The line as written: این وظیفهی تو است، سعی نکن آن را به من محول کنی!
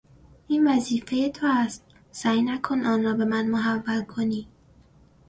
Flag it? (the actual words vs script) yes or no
no